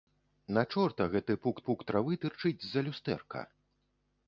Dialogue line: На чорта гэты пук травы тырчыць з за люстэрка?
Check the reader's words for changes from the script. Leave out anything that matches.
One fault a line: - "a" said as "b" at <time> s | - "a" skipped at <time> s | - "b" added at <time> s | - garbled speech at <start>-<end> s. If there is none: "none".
- "пук" added at 1.7 s